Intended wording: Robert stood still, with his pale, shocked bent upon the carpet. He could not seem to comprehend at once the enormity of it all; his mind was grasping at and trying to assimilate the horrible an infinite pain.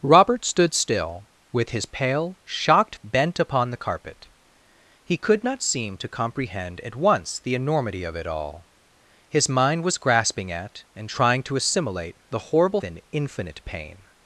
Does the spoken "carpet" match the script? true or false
true